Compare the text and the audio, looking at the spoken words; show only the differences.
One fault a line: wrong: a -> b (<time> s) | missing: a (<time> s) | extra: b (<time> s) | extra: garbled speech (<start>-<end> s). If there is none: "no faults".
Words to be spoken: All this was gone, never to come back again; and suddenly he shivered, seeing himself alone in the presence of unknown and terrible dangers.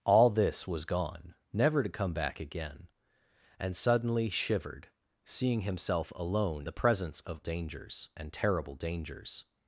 missing: he (4.3 s)
missing: in (6.7 s)
wrong: unknown -> dangers (7.4 s)